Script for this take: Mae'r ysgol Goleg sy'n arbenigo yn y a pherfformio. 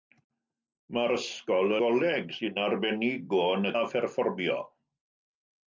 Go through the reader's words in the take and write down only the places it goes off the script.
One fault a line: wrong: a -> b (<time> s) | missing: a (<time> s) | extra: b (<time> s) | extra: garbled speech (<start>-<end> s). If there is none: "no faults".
no faults